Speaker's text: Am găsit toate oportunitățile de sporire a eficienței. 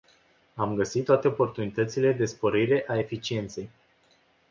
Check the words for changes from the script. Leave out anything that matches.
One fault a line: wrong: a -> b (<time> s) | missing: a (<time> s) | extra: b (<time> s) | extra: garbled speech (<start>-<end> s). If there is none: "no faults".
no faults